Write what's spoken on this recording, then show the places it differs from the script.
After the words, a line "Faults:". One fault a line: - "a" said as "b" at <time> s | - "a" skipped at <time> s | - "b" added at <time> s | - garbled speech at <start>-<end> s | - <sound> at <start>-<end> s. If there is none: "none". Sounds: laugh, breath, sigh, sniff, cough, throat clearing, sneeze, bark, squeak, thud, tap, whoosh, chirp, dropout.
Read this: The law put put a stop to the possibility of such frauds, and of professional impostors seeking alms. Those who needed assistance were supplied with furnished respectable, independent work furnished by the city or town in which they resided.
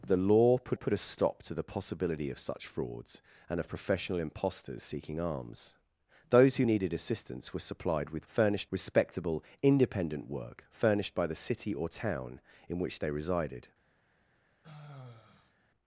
The law put put a stop to the possibility of such frauds, and of professional impostors seeking alms. Those who needed assistance were supplied with furnished respectable, independent work furnished by the city or town in which they resided.
Faults:
- sigh at 14.6-15.5 s